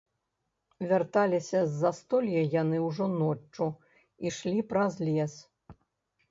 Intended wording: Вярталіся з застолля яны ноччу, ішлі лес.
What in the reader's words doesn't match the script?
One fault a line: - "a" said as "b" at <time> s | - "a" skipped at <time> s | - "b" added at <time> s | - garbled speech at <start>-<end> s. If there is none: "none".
- "ўжо" added at 2.9 s
- "праз" added at 4.7 s